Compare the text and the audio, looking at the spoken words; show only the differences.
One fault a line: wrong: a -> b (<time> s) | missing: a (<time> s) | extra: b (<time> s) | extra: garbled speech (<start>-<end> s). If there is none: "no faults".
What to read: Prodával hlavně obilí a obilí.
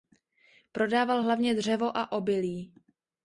wrong: obilí -> dřevo (1.5 s)